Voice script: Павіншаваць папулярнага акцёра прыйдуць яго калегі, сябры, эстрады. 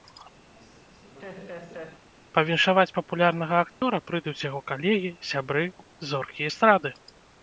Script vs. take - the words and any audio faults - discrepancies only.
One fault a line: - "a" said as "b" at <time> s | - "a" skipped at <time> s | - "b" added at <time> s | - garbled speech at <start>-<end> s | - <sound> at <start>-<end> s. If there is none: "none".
- laugh at 0.5-2.0 s
- dropout at 3.7-3.8 s
- "зоркі" added at 6.1 s